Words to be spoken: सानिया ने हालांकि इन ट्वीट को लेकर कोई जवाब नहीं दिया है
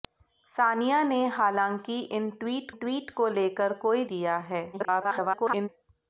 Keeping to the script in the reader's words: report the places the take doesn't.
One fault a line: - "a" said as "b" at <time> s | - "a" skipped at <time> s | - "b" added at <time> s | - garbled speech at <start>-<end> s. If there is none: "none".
- "ट्वीट" added at 2.7 s
- "जवाब नहीं" skipped at 4.0 s
- garbled speech at 4.7-5.7 s